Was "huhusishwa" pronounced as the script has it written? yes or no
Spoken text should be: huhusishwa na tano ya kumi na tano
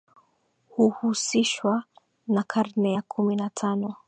yes